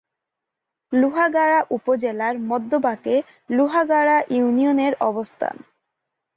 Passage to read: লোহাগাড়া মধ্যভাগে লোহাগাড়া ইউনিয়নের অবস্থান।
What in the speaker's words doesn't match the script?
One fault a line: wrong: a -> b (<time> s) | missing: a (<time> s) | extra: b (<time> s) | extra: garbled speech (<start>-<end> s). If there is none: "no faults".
extra: উপজেলার (1.7 s)